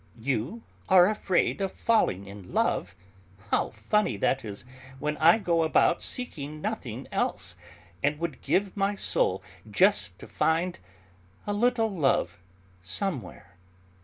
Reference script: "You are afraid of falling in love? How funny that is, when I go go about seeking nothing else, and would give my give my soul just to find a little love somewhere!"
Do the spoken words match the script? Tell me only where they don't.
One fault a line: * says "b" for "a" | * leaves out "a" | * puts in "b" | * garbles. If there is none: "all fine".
* leaves out "go"
* leaves out "give my"